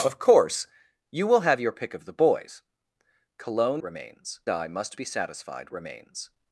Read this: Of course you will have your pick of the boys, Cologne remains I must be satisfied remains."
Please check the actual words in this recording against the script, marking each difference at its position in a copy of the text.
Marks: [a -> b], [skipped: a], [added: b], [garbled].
Of course you will have your pick of the boys, Cologne remains I must be satisfied remains."